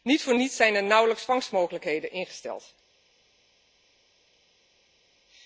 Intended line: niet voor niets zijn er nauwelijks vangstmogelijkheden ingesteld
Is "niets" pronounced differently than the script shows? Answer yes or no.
no